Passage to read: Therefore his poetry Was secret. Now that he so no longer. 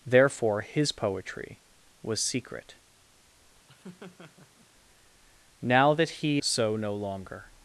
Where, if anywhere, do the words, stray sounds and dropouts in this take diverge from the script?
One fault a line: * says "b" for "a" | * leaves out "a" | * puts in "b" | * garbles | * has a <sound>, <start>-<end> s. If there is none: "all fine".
* has a laugh, 3.7-4.7 s